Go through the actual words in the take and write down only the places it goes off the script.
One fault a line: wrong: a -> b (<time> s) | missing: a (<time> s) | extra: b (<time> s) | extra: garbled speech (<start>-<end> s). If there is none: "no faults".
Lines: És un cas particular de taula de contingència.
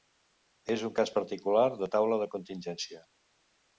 no faults